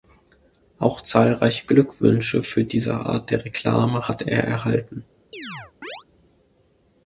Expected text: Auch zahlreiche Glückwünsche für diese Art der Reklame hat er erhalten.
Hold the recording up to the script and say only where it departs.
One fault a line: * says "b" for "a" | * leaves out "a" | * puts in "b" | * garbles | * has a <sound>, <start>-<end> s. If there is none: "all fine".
* has a chirp, 5.3-6.0 s